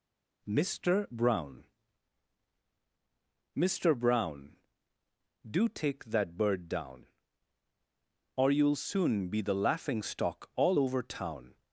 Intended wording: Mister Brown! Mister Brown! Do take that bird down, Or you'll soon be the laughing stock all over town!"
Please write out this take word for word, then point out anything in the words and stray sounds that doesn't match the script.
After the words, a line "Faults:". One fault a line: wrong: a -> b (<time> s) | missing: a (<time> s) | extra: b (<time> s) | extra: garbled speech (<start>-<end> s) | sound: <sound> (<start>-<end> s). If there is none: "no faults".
Mister Brown! Mister Brown! Do take that bird down, Or you'll soon be the laughing stock all over town!"
Faults:
no faults